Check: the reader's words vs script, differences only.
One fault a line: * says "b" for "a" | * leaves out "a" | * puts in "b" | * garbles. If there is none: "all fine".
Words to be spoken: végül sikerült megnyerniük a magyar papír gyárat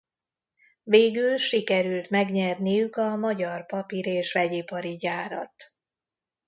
* puts in "és vegyipari"